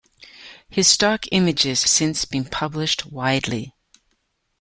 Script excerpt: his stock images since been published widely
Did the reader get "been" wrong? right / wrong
right